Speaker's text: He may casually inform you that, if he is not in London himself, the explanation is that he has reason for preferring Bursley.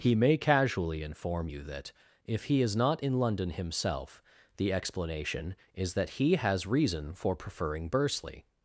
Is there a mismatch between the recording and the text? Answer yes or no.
no